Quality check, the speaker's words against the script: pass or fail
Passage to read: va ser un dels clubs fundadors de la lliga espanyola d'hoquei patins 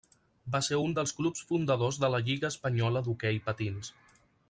pass